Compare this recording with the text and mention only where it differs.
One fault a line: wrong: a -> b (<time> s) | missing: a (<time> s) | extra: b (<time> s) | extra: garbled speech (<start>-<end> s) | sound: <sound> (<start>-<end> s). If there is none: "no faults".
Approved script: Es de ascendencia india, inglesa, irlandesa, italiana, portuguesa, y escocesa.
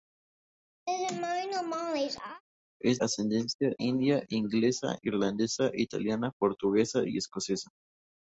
sound: laugh (0.9-2.4 s)
missing: de (3.0 s)